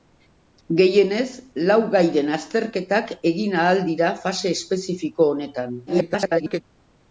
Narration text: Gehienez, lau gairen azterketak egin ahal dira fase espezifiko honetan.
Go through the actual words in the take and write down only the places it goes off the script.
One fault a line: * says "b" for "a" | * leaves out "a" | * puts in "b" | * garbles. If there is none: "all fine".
* garbles